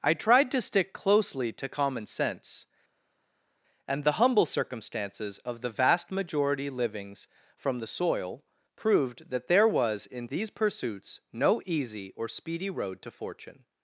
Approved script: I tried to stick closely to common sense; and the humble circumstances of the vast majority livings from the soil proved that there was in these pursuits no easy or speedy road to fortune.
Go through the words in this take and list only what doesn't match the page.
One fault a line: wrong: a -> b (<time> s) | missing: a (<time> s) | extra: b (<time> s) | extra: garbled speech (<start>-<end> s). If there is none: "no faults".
no faults